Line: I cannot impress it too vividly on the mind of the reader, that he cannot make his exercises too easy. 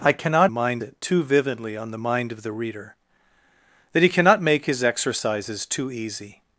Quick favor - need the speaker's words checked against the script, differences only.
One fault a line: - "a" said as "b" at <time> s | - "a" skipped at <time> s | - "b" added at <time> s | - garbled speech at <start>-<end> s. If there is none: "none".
- "impress" said as "mind" at 0.5 s